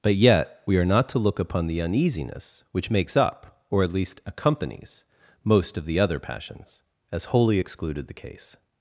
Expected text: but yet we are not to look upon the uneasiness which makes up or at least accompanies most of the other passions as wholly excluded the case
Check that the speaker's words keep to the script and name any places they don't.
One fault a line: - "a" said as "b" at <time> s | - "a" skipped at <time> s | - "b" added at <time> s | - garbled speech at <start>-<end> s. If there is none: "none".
none